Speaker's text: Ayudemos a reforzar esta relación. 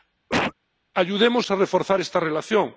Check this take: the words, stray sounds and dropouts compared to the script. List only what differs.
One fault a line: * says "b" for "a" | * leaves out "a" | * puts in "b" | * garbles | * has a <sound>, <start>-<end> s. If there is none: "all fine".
* has a cough, 0.3-0.5 s